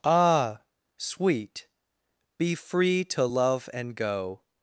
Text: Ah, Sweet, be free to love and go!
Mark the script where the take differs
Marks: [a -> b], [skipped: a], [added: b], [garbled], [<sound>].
Ah, Sweet, be free to love and go!